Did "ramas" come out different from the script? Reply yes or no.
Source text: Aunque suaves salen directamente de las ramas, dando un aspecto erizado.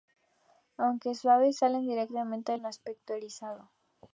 yes